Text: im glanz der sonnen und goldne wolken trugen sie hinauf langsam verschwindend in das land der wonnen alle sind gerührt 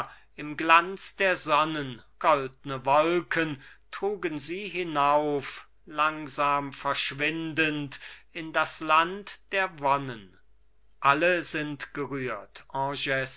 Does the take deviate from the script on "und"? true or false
true